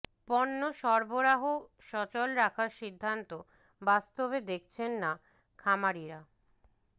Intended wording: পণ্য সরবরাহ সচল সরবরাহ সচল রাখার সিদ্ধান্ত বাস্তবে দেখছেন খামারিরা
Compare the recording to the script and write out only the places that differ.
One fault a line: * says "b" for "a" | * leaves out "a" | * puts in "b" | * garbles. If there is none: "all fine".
* leaves out "সরবরাহ সচল"
* puts in "না"